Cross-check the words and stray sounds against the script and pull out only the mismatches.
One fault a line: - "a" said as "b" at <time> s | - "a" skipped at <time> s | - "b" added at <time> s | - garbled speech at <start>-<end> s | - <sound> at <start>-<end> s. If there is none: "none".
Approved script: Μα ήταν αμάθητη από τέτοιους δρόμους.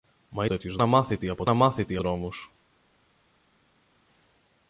- "ήταν" said as "τέτοιους" at 0.5 s
- "τέτοιους" said as "αμάθητη" at 1.5 s